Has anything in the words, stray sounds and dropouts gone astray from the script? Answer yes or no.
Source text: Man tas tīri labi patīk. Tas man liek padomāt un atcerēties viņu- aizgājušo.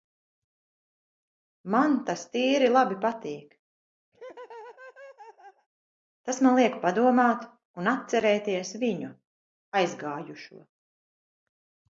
yes